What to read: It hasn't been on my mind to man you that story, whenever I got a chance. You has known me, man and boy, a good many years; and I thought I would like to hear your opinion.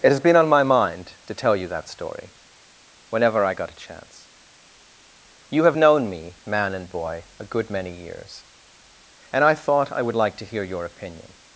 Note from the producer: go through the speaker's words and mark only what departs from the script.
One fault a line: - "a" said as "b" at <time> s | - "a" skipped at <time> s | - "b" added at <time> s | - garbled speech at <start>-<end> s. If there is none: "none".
- "hasn't" said as "has" at 0.1 s
- "man" said as "tell" at 1.4 s
- "has" said as "have" at 5.7 s